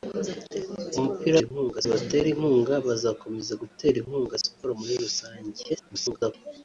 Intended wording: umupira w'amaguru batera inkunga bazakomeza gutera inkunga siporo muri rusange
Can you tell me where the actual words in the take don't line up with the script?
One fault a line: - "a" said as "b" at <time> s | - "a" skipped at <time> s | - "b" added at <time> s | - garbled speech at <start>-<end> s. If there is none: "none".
- "w'amaguru" said as "inkunga" at 1.4 s
- garbled speech at 5.7-6.3 s